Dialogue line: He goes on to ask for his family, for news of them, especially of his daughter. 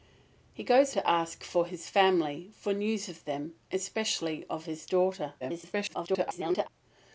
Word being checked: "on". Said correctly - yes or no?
no